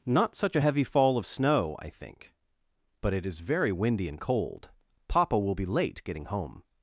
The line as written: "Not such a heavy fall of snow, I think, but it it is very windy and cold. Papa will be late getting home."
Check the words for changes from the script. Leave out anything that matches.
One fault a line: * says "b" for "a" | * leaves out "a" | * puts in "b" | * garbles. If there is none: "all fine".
* leaves out "it"